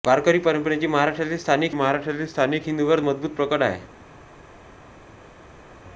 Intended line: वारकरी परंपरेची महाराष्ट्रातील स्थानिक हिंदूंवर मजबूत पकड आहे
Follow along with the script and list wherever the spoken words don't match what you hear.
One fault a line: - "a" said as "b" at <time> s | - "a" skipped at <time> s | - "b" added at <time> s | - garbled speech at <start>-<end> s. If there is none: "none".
- "महाराष्ट्रातील स्थानिक" added at 1.7 s